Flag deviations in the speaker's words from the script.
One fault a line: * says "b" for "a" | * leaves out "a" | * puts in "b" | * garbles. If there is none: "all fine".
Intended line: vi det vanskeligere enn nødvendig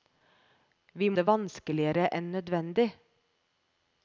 all fine